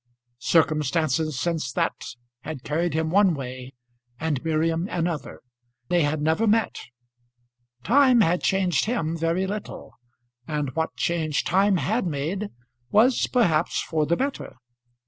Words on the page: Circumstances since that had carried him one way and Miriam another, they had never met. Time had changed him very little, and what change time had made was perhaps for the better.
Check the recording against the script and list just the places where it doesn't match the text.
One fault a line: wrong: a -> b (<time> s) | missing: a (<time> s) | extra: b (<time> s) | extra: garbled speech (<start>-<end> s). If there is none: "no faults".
no faults